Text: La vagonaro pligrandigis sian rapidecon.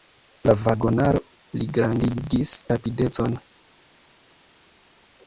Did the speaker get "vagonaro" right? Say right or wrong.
right